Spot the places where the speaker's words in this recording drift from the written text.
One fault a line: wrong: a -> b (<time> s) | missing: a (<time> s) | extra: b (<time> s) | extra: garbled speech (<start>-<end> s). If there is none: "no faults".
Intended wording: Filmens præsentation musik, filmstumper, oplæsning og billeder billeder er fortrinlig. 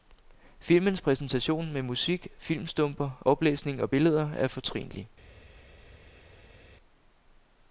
extra: med (1.7 s)
missing: billeder (4.3 s)